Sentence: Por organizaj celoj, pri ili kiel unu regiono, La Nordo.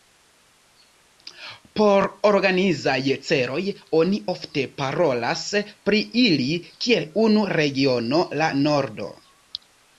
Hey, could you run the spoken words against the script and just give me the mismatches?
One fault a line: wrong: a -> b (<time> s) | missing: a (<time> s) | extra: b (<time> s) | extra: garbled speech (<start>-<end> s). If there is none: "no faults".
extra: oni ofte parolas (4.0 s)